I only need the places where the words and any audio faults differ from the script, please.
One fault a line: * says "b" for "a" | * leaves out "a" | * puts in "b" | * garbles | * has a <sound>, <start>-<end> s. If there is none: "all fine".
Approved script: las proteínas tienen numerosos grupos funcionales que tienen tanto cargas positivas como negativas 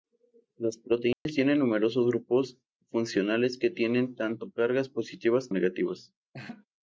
* has a dropout, 1.1-1.3 s
* leaves out "como"
* has a laugh, 6.3-6.7 s